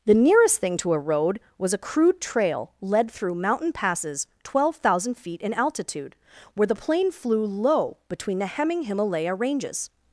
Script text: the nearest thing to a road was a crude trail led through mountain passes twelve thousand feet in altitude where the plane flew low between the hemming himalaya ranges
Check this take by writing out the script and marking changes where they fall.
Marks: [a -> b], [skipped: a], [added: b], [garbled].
the nearest thing to a road was a crude trail led through mountain passes twelve thousand feet in altitude where the plane flew low between the hemming himalaya ranges